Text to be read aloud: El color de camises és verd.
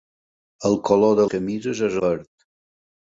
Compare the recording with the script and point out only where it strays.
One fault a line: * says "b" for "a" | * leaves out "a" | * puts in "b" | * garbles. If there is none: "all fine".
all fine